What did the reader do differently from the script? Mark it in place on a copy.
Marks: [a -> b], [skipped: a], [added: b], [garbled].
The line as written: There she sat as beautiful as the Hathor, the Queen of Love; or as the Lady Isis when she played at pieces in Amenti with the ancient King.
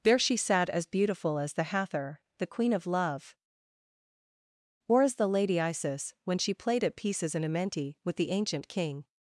There she sat as beautiful as the Hathor, the Queen of Love; or as the Lady Isis when she played at pieces in Amenti with the ancient King.